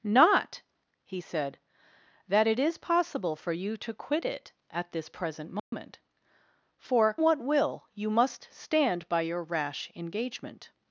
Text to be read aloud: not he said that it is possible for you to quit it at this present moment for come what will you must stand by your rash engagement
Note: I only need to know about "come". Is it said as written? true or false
false